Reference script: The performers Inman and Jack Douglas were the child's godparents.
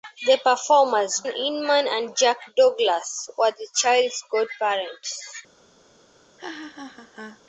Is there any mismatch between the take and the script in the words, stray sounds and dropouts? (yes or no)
yes